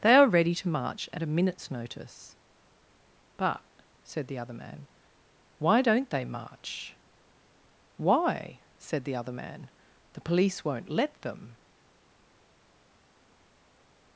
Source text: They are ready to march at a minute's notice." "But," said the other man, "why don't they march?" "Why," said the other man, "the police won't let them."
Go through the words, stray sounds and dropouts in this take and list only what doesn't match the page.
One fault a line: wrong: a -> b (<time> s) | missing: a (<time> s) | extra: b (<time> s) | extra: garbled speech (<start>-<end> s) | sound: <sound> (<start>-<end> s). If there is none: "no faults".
no faults